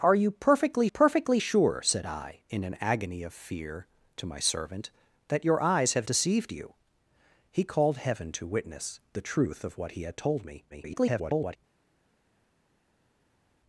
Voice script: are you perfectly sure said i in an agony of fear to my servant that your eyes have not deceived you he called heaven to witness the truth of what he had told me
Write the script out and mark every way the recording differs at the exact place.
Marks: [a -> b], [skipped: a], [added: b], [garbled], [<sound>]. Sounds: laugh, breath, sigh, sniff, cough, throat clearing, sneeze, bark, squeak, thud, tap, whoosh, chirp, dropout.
are you perfectly [added: perfectly] sure said i in an agony of fear to my servant that your eyes have [skipped: not] deceived you he called heaven to witness the truth of what he had told me [garbled]